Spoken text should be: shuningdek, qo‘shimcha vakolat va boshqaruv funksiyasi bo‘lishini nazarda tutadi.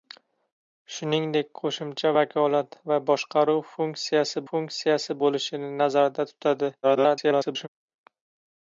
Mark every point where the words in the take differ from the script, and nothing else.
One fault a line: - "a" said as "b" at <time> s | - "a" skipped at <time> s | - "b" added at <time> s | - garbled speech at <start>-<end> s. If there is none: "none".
- "funksiyasi" added at 4.5 s
- garbled speech at 6.8-7.7 s